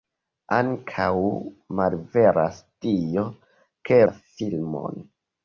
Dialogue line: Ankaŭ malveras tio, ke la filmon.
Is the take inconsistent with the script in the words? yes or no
no